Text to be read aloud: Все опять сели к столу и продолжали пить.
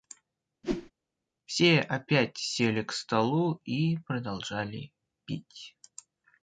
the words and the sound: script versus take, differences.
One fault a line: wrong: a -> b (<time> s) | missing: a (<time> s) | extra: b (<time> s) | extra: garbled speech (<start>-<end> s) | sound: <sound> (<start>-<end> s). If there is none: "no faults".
sound: whoosh (0.6-0.9 s)